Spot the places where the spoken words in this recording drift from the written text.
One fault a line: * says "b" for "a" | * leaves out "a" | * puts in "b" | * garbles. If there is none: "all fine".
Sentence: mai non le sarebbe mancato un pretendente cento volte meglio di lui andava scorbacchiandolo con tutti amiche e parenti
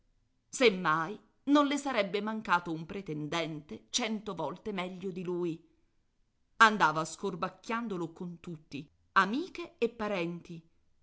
all fine